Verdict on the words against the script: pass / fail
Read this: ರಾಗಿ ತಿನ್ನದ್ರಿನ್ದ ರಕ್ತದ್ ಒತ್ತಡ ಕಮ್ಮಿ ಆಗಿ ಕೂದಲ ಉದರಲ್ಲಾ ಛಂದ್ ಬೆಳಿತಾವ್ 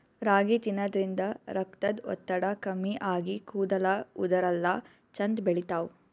pass